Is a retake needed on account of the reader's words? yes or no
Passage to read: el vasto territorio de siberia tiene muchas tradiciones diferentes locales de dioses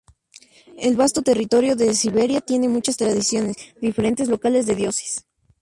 no